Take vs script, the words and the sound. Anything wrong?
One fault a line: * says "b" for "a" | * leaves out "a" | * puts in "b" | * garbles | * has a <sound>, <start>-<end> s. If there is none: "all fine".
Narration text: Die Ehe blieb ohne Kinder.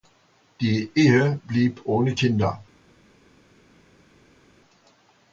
all fine